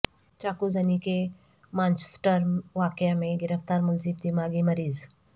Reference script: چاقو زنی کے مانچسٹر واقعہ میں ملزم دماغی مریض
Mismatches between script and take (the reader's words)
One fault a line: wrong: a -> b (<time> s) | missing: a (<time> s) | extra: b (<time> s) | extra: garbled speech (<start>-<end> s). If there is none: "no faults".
extra: گرفتار (3.4 s)